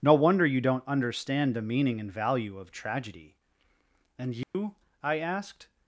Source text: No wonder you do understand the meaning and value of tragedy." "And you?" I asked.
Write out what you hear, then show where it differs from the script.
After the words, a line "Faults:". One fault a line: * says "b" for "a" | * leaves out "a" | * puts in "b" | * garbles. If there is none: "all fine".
No wonder you don't understand the meaning and value of tragedy." "And you?" I asked.
Faults:
* says "don't" for "do"